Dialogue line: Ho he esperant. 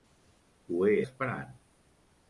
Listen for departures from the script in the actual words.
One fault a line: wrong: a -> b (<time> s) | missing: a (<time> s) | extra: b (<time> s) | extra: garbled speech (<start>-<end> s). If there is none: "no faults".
no faults